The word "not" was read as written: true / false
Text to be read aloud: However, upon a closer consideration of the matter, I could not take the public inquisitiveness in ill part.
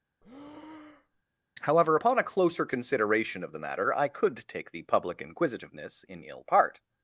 false